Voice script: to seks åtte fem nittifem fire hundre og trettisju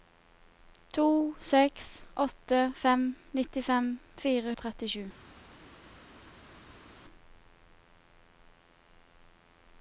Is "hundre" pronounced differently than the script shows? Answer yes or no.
yes